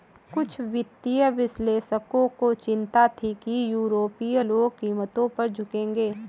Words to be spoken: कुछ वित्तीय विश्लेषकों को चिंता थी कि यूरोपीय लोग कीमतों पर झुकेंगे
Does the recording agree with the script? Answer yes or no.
yes